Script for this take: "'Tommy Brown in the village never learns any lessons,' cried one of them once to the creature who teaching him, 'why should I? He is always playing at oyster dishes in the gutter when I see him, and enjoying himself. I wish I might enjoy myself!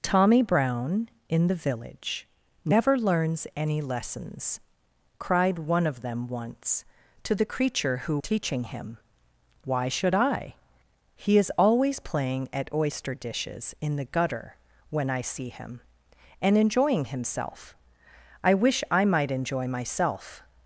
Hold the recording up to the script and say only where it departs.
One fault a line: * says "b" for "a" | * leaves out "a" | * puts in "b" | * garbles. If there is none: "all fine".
all fine